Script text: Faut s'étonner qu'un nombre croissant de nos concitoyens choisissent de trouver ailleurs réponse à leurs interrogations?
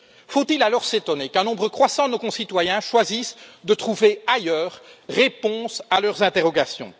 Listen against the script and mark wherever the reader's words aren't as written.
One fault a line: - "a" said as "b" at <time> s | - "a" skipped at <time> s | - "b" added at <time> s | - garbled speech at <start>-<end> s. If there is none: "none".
- "il alors" added at 0.5 s